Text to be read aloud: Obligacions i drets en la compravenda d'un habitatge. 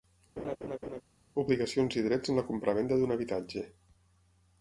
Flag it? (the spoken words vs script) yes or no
no